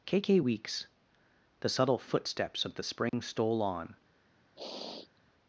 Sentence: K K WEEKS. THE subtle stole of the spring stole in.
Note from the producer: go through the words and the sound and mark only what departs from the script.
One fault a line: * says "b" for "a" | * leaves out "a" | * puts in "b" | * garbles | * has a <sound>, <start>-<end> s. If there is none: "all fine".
* says "footsteps" for "stole"
* has a dropout, 3.1-3.1 s
* says "on" for "in"
* has a sniff, 4.6-5.2 s